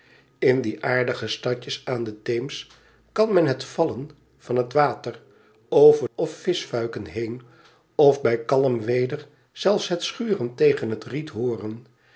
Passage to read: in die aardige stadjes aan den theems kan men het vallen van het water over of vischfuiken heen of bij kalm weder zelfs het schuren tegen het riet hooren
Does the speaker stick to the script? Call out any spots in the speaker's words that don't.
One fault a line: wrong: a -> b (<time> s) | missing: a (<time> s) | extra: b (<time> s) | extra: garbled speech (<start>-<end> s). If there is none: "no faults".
no faults